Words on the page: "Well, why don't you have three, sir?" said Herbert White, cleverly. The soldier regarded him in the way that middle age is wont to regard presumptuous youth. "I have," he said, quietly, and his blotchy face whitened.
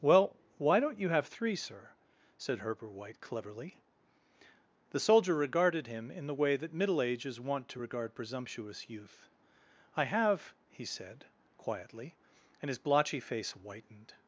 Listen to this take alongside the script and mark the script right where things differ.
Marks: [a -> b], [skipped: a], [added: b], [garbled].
"Well, why don't you have three, sir?" said Herbert White, cleverly. The soldier regarded him in the way that middle age is wont to regard presumptuous youth. "I have," he said, quietly, and his blotchy face whitened.